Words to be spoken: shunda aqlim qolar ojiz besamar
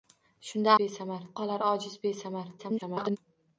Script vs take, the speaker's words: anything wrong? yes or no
yes